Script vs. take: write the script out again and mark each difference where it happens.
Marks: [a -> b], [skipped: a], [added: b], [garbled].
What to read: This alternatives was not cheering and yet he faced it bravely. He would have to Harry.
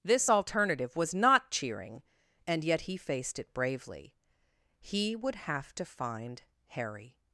This [alternatives -> alternative] was not cheering and yet he faced it bravely. He would have to [added: find] Harry.